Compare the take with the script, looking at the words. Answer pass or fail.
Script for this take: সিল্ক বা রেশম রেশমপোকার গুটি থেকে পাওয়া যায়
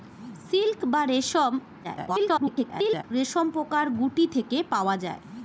fail